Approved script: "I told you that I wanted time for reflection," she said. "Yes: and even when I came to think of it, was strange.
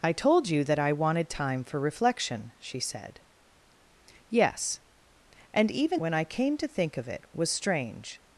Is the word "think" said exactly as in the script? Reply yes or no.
yes